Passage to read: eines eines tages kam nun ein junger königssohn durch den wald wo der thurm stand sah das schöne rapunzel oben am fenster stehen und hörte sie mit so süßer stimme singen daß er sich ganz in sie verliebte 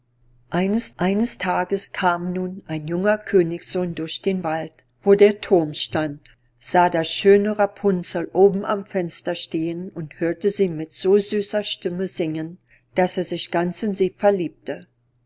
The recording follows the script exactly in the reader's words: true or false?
true